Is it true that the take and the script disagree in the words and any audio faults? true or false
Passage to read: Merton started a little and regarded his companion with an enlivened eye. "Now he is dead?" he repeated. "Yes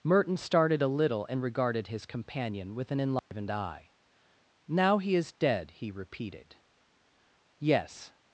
true